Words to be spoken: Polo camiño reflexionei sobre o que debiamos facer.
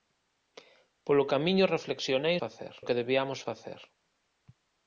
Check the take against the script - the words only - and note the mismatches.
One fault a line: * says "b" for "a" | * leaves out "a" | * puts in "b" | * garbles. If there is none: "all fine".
* says "facer" for "sobre"